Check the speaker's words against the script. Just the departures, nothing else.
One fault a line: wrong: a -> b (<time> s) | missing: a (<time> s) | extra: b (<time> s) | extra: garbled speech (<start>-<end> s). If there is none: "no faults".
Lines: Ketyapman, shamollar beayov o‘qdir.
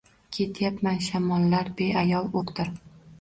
no faults